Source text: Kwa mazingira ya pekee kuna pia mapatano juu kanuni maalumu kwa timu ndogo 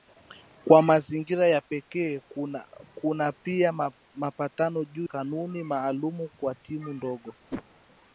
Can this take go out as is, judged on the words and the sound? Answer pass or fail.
fail